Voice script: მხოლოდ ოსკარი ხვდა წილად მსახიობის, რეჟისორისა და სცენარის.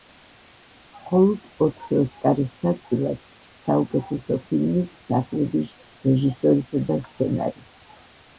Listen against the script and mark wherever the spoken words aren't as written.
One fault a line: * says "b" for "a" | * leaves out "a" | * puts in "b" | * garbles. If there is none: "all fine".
* puts in "ოთხი"
* puts in "საუკეთესო ფილმის"